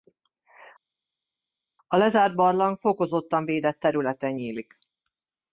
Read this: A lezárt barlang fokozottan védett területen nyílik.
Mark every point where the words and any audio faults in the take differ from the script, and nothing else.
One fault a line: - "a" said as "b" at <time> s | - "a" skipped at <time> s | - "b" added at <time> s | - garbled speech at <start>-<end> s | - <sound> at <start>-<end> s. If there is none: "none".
none